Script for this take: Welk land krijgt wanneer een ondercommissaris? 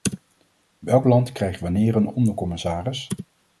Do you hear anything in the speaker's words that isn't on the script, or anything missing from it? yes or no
no